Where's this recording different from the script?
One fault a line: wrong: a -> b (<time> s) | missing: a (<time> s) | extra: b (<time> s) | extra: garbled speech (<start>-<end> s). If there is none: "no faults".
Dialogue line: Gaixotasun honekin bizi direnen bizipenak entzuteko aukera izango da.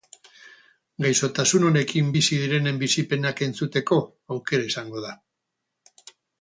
no faults